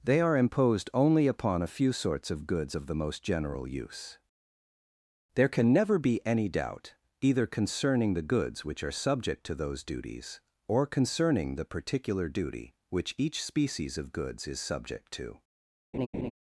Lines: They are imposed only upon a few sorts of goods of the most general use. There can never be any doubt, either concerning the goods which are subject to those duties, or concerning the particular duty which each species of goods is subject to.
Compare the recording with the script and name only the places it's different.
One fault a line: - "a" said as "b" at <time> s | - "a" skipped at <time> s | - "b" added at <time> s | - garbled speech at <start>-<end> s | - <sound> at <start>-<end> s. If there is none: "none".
- laugh at 15.9-16.3 s